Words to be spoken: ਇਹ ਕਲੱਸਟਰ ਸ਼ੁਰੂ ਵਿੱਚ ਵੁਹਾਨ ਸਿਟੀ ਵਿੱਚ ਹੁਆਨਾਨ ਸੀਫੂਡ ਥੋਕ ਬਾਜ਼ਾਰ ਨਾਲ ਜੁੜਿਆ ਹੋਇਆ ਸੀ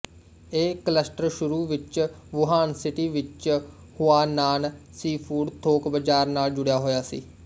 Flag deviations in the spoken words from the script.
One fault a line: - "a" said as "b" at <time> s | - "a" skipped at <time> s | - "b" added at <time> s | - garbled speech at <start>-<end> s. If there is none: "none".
none